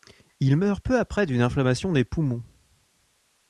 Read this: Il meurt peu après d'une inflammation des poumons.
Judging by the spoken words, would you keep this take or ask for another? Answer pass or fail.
pass